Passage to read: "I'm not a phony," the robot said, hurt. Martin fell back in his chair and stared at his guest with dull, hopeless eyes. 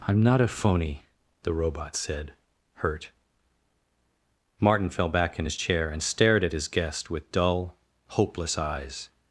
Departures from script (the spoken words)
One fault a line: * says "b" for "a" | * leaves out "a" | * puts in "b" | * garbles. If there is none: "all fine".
all fine